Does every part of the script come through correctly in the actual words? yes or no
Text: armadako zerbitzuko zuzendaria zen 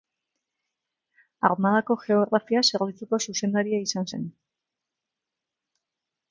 no